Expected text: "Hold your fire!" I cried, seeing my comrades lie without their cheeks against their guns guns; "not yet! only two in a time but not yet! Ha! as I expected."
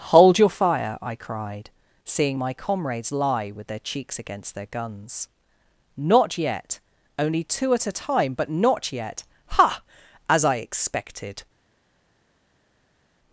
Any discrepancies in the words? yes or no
yes